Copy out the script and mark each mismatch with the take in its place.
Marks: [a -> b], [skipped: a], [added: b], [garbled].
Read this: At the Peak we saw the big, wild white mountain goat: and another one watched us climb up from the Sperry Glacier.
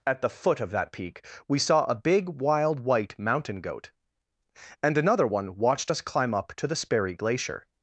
At the [added: foot of that] Peak we saw [the -> a] big, wild white mountain goat: and another one watched us climb up [from -> to] the Sperry Glacier.